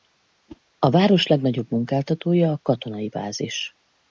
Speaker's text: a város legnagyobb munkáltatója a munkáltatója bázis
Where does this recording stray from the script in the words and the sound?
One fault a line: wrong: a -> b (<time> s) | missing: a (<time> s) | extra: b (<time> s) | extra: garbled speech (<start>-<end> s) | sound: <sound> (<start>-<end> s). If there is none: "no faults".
sound: whoosh (0.5-0.6 s)
wrong: munkáltatója -> katonai (2.6 s)